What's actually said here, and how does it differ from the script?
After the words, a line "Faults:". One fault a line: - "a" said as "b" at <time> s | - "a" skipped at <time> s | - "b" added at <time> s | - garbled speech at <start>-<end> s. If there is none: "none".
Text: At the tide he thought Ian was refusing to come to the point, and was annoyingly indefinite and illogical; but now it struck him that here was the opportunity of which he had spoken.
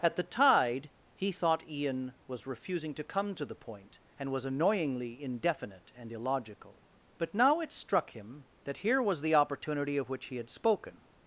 At the tide he thought Ian was refusing to come to the point, and was annoyingly indefinite and illogical; but now it struck him that here was the opportunity of which he had spoken.
Faults:
none